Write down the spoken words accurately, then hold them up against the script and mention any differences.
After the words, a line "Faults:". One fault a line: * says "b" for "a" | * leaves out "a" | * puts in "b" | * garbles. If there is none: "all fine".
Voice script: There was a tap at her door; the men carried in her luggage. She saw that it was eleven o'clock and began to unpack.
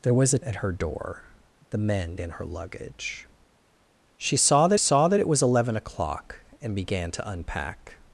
There was a at her door; the men in her luggage. She saw that saw that it was eleven o'clock and began to unpack.
Faults:
* leaves out "tap"
* leaves out "carried"
* puts in "saw that"